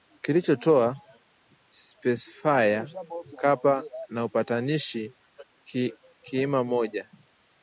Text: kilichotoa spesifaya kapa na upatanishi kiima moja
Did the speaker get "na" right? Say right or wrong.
right